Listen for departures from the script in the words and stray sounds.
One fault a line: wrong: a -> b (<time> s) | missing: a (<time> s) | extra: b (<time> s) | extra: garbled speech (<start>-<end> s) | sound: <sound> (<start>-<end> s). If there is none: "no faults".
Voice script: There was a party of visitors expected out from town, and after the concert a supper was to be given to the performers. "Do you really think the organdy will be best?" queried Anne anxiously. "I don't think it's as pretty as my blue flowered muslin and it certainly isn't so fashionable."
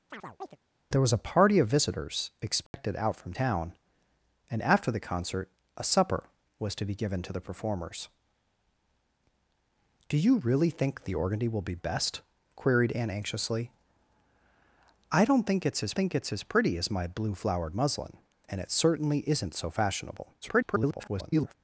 sound: chirp (0.1-0.6 s)
sound: dropout (2.7-2.7 s)
extra: think it's as (15.9 s)
extra: garbled speech (20.4-21.5 s)